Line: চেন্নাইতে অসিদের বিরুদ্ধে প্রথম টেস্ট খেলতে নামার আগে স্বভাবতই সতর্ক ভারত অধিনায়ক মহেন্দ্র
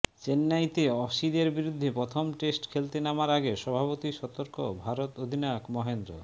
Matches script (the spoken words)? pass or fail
pass